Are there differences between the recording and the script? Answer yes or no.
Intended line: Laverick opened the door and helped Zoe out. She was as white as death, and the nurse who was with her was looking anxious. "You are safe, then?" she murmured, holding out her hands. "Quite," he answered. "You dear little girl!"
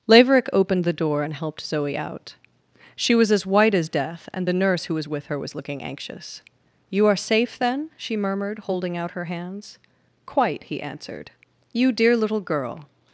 no